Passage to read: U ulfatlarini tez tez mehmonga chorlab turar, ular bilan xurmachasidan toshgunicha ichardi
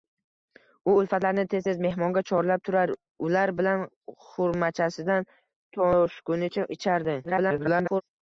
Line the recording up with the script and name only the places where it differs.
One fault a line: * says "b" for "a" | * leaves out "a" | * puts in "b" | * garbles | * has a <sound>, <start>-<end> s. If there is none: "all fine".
* garbles